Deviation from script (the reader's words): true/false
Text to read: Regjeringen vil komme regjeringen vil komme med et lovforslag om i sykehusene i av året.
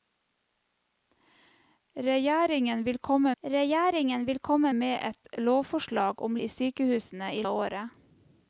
false